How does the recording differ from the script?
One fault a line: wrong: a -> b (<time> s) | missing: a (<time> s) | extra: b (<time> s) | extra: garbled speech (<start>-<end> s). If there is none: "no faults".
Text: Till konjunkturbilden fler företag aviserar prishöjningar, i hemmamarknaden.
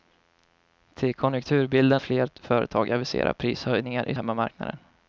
no faults